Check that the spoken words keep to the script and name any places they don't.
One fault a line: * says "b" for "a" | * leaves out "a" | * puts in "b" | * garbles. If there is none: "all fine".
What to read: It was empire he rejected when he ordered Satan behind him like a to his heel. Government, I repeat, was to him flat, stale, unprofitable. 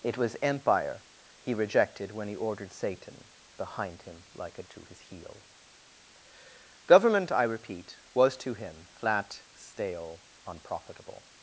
all fine